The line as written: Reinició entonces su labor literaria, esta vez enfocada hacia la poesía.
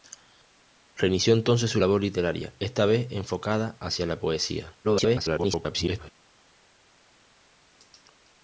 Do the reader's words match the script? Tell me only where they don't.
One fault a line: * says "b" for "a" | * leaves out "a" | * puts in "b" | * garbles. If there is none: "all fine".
* garbles